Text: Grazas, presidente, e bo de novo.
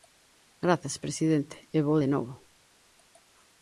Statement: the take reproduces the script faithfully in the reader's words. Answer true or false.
true